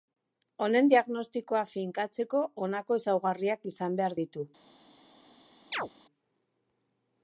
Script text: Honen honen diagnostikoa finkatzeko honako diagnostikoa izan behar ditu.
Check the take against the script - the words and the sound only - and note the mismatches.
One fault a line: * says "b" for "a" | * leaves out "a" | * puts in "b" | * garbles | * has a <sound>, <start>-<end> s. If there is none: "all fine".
* leaves out "honen"
* says "ezaugarriak" for "diagnostikoa"
* has a chirp, 5.7-5.9 s